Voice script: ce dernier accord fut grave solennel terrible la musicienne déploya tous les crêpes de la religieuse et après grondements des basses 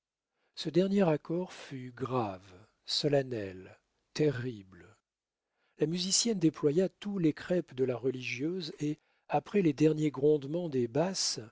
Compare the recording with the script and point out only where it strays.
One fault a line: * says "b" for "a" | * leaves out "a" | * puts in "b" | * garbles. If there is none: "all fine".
* puts in "les derniers"